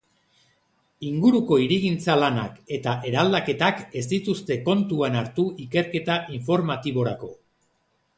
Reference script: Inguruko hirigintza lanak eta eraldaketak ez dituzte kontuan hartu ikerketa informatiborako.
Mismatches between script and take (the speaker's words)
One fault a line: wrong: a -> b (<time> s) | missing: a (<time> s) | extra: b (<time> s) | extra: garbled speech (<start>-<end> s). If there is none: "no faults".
no faults